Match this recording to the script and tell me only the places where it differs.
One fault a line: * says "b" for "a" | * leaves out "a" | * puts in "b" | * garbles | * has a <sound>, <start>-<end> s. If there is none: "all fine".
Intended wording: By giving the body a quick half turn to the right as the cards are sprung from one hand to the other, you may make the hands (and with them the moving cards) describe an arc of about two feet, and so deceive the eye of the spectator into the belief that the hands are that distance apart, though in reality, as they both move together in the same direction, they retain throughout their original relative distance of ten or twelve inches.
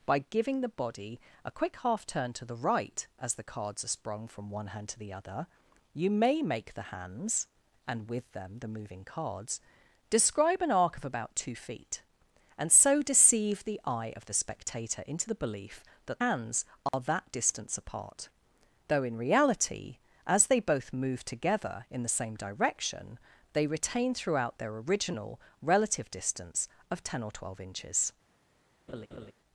* leaves out "the"
* has a dropout, 16.9-16.9 s
* has a laugh, 28.9-29.3 s